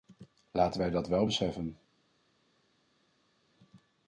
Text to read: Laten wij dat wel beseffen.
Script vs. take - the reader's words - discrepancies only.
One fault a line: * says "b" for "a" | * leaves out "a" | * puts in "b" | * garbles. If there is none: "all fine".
all fine